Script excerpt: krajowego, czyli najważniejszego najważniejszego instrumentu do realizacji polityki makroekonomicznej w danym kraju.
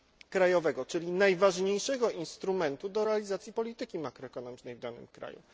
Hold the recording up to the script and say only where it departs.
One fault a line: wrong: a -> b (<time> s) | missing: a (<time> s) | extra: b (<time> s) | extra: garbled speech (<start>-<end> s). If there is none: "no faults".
missing: najważniejszego (2.1 s)